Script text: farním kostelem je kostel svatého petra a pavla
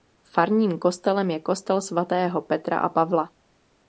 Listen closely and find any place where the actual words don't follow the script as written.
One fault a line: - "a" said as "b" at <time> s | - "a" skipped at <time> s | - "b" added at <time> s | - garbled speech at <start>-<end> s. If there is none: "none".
none